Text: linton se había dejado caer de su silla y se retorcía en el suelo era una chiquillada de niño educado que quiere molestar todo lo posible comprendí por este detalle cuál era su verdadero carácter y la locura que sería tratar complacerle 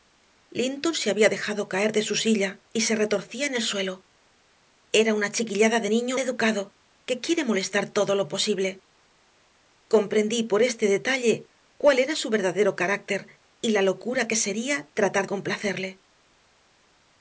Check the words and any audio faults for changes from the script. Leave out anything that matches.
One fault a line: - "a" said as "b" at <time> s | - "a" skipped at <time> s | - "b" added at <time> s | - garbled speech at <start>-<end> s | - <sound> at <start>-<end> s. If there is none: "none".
none